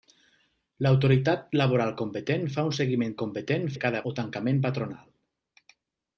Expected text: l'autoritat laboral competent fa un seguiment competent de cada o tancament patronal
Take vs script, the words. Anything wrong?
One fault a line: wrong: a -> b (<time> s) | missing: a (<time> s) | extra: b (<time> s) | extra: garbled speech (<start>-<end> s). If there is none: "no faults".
no faults